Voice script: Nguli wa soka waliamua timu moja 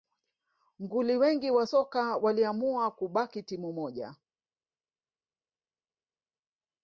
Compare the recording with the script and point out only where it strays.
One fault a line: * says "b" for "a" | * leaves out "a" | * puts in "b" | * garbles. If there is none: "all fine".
* puts in "wengi"
* puts in "kubaki"